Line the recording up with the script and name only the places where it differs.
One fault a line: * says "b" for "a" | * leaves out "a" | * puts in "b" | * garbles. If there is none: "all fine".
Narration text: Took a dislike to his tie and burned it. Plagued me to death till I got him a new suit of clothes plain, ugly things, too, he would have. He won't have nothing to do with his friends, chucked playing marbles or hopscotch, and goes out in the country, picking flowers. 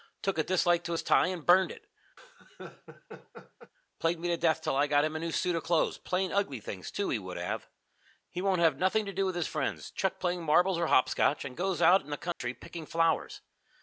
all fine